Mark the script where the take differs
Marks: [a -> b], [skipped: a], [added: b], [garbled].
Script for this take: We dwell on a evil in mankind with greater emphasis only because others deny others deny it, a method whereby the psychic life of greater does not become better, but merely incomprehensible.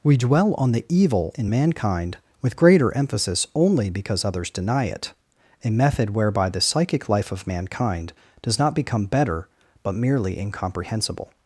We dwell on [a -> the] evil in mankind with greater emphasis only because others deny [skipped: others deny] it, a method whereby the psychic life of [greater -> mankind] does not become better, but merely incomprehensible.